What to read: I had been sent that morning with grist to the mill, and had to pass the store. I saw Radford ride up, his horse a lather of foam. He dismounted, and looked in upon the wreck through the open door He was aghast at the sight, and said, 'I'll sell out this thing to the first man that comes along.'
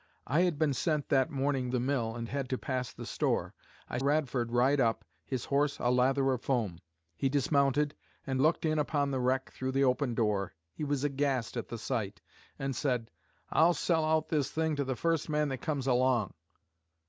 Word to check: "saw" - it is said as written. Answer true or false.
false